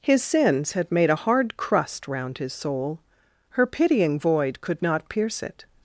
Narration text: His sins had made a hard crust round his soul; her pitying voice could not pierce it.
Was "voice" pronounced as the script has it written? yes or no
no